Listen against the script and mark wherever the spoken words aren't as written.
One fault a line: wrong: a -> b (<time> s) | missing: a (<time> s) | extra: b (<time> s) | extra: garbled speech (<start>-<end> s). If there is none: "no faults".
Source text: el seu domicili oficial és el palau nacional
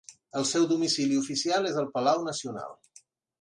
no faults